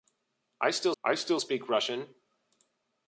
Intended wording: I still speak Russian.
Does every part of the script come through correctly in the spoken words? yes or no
no